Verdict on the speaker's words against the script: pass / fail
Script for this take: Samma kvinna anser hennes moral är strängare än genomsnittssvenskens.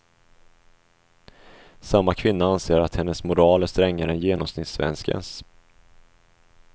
fail